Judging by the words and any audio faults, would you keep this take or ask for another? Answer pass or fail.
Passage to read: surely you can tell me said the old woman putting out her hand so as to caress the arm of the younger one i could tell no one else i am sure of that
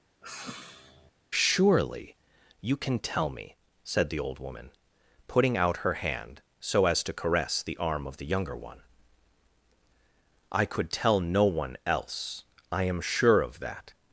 fail